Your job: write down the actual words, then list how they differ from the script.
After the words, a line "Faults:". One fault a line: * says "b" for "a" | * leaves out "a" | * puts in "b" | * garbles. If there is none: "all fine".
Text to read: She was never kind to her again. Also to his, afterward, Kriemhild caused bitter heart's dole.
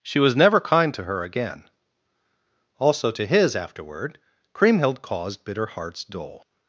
She was never kind to her again. Also to his, afterward, Kriemhild caused bitter heart's dole.
Faults:
all fine